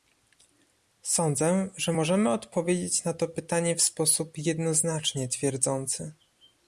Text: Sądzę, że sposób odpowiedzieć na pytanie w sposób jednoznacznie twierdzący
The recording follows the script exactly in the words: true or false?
false